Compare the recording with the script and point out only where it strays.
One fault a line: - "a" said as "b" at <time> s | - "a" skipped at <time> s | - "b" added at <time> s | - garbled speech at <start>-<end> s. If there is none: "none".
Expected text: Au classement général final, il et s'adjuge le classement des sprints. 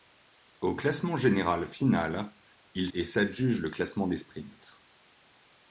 none